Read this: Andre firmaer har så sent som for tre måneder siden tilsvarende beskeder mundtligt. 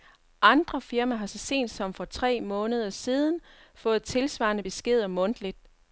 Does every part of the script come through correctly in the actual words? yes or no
no